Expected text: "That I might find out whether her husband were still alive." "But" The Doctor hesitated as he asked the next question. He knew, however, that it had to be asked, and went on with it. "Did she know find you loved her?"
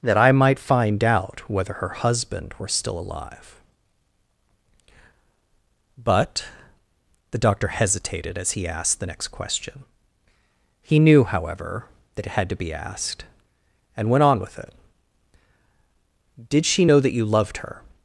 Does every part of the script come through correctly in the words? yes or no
no